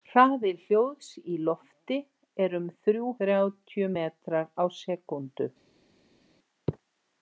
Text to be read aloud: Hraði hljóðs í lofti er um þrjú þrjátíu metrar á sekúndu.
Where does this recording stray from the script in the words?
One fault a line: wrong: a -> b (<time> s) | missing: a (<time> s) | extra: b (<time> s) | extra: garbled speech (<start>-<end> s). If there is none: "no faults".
no faults